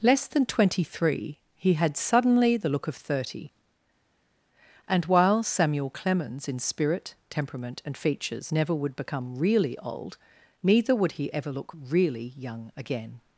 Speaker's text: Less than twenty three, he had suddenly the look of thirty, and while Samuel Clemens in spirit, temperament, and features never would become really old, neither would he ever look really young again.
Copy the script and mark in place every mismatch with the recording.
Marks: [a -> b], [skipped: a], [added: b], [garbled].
Less than twenty three, he had suddenly the look of thirty, and while Samuel Clemens in spirit, temperament, and features never would become really old, neither would he ever look really young again.